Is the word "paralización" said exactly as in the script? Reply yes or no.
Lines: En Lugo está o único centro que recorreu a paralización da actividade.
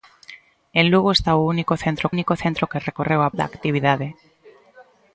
no